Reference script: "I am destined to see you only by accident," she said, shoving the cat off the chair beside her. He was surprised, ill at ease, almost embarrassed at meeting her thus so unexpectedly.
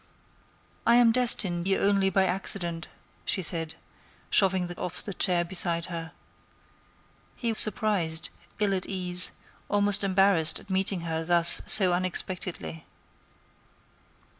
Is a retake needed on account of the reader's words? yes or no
yes